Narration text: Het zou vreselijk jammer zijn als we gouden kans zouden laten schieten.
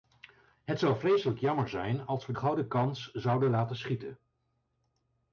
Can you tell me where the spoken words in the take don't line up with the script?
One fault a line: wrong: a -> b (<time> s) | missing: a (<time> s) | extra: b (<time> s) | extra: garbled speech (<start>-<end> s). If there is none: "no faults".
no faults